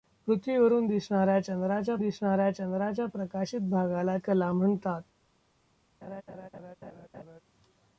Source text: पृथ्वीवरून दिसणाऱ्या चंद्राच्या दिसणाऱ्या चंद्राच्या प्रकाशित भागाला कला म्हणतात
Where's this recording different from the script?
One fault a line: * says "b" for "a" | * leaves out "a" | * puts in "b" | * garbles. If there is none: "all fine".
all fine